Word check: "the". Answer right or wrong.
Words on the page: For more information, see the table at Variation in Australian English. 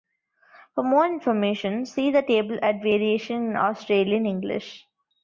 right